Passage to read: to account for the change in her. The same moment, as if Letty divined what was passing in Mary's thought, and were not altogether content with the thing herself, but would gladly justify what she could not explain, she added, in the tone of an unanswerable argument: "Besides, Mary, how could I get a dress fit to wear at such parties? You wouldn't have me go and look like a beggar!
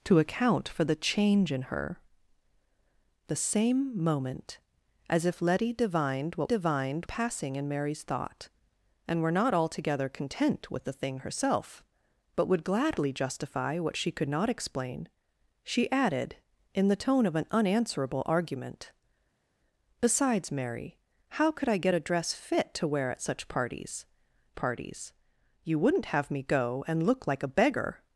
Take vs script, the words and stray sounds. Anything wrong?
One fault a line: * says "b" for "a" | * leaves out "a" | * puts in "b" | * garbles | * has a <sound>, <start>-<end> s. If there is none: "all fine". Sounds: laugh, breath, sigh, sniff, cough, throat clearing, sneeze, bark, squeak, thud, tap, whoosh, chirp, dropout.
* says "divined" for "was"
* puts in "parties"